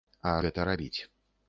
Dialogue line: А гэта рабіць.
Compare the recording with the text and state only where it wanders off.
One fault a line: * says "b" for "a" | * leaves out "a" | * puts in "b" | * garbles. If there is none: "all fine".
all fine